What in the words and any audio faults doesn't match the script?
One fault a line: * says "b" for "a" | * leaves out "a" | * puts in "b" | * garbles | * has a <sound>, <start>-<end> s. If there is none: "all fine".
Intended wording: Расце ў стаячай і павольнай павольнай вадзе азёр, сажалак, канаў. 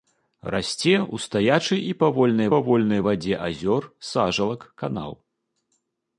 all fine